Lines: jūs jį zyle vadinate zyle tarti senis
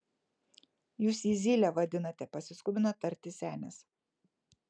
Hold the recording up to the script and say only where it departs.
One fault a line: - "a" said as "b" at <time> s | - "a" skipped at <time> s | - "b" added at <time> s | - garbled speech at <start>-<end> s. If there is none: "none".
- "zyle" said as "pasiskubino" at 2.4 s